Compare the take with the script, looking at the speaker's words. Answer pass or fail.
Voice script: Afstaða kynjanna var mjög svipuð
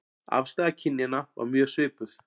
pass